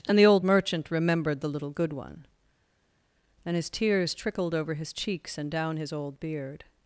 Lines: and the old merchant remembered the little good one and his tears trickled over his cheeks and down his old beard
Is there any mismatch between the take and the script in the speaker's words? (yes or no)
no